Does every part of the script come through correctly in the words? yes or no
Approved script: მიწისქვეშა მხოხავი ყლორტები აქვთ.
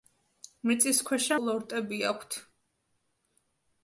no